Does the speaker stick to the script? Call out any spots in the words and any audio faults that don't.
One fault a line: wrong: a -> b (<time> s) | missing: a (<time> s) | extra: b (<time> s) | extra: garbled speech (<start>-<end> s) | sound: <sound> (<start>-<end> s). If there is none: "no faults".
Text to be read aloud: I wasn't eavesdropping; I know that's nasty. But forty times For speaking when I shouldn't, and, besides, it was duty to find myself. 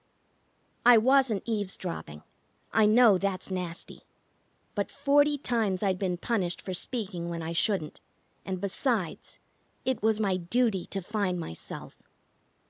extra: I'd been punished (5.8 s)
extra: my (10.2 s)